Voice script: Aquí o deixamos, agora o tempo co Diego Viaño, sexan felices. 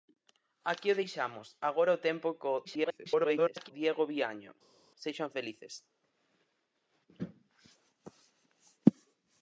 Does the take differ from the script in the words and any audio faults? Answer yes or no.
yes